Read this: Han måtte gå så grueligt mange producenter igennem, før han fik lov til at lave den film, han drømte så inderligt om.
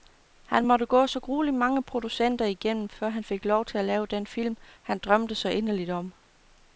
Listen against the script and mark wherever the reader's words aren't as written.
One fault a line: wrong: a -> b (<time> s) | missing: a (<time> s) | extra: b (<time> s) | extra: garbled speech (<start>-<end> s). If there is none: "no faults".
no faults